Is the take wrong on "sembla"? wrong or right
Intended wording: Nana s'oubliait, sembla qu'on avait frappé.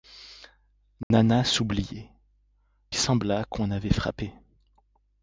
right